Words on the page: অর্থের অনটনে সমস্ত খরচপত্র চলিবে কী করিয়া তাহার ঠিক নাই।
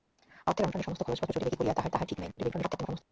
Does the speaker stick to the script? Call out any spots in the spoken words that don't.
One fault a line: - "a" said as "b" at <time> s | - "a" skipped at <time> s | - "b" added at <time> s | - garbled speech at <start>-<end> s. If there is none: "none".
- "তাহার" added at 1.9 s
- garbled speech at 2.4-3.0 s